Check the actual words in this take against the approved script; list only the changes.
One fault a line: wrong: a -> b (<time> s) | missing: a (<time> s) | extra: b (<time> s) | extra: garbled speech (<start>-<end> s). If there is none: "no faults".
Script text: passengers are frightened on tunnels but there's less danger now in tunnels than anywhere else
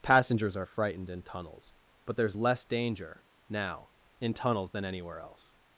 wrong: on -> in (1.1 s)